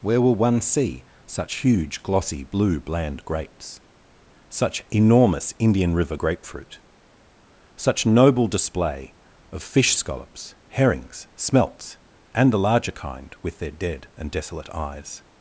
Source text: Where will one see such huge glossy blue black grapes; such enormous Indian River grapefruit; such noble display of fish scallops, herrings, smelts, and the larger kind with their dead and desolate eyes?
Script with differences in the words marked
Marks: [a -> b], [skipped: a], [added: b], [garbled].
Where will one see such huge glossy blue [black -> bland] grapes; such enormous Indian River grapefruit; such noble display of fish scallops, herrings, smelts, and the larger kind with their dead and desolate eyes?